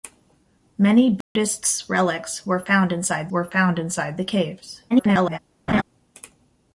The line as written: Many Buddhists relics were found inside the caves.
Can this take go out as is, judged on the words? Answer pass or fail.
fail